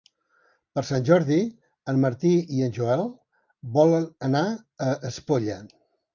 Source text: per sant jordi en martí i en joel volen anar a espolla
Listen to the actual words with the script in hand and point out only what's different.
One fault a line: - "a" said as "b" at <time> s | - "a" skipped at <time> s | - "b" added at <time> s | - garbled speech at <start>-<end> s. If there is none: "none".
none